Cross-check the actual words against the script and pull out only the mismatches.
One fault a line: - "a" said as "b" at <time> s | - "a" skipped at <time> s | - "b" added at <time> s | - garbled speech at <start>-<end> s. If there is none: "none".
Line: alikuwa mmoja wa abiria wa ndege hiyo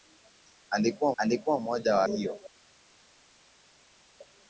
- "alikuwa" added at 1.2 s
- "abiria wa ndege" skipped at 2.0 s